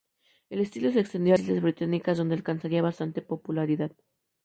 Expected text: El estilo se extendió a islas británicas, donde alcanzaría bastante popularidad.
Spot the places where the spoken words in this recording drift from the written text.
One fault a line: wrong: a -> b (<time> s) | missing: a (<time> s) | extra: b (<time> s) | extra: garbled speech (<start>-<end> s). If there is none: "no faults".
no faults